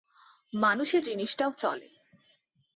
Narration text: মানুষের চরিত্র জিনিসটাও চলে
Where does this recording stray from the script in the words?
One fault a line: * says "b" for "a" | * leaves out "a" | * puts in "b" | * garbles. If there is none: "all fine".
* leaves out "চরিত্র"